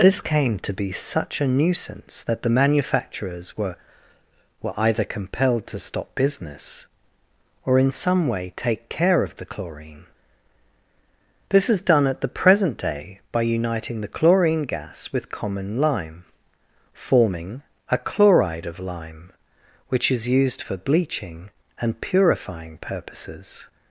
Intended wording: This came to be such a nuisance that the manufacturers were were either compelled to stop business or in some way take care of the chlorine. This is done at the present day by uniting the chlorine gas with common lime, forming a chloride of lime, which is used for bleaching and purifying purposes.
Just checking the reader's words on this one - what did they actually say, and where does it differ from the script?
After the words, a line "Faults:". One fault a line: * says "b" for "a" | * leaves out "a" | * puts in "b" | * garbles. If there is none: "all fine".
This came to be such a nuisance that the manufacturers were were either compelled to stop business or in some way take care of the chlorine. This is done at the present day by uniting the chlorine gas with common lime, forming a chloride of lime, which is used for bleaching and purifying purposes.
Faults:
all fine